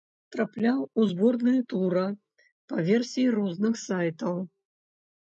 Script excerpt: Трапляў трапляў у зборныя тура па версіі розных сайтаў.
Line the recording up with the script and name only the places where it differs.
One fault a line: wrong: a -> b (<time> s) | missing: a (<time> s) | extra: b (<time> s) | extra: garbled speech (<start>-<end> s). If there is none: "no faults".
missing: трапляў (0.8 s)